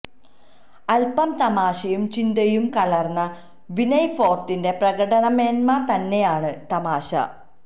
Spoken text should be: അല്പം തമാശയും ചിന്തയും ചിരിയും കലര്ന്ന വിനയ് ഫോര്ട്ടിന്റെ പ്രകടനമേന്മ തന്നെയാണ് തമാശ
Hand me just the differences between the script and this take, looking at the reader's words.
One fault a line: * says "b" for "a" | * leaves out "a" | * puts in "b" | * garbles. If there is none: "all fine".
* leaves out "ചിരിയും"